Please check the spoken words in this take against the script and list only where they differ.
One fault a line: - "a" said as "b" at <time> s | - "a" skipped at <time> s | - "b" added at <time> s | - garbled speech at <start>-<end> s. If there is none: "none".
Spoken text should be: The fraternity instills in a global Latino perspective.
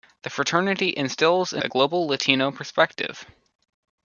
none